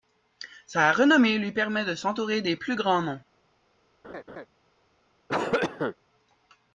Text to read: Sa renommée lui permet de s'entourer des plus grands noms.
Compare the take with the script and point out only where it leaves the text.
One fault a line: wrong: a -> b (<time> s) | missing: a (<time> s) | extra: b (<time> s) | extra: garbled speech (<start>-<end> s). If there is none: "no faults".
no faults